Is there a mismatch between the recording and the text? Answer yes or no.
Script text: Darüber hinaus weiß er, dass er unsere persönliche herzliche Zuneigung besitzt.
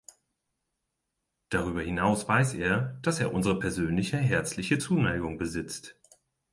no